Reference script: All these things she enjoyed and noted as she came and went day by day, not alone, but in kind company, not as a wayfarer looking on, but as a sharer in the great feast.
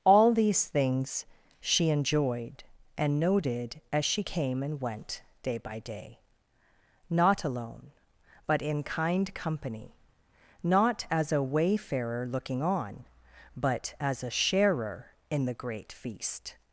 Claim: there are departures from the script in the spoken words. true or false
false